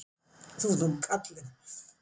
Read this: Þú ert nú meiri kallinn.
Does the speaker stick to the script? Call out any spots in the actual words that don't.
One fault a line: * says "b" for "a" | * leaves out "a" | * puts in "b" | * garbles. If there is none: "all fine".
* leaves out "meiri"